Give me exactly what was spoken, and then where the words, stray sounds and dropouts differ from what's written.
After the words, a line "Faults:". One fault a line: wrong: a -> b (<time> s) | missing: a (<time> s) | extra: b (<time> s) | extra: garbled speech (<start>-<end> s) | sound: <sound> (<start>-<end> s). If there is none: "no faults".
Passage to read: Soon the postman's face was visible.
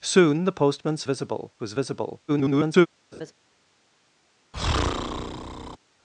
Soon the postman's visible was visible. [garbled]
Faults:
wrong: face -> visible (1.0 s)
extra: garbled speech (2.3-2.9 s)
sound: laugh (3.1-3.3 s)
sound: breath (4.5-5.8 s)